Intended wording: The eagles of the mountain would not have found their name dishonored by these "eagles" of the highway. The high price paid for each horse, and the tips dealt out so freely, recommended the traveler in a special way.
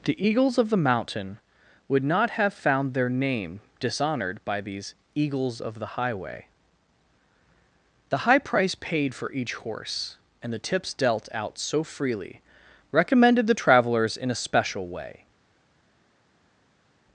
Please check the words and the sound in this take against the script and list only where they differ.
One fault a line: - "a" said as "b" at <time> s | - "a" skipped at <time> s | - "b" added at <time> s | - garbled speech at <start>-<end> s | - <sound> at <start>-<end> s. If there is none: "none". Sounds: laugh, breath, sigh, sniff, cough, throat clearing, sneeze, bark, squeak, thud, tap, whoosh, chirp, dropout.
- "traveler" said as "travelers" at 13.5 s